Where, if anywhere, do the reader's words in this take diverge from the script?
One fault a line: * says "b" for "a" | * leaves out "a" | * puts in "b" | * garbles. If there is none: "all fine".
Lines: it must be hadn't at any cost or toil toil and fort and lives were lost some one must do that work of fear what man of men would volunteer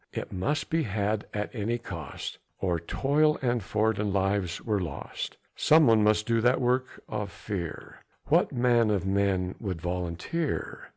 * says "had" for "hadn't"
* leaves out "toil"